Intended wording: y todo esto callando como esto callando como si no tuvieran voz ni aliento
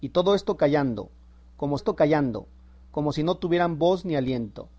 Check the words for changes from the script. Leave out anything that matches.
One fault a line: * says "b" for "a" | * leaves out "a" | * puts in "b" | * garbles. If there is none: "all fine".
all fine